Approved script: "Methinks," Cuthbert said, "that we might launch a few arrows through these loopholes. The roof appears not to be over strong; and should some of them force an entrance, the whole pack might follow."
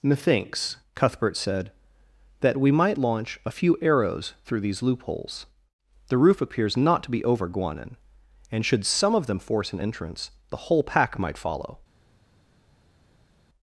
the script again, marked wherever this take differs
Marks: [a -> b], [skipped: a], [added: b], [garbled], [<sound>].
"Methinks," Cuthbert said, "that we might launch a few arrows through these loopholes. The roof appears not to be over [strong; -> guanin] and should some of them force an entrance, the whole pack might follow."